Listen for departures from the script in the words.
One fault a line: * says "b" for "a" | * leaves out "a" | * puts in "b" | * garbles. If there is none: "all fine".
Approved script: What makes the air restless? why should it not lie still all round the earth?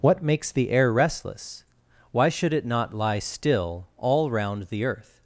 all fine